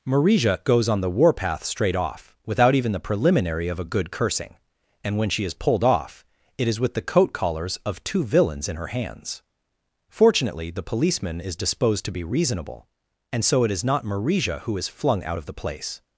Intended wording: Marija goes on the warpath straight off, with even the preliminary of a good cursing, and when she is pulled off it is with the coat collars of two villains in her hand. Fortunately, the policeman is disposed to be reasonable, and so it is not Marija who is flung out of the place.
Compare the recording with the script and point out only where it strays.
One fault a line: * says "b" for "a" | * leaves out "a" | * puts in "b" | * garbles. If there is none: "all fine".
* says "without" for "with"
* says "hands" for "hand"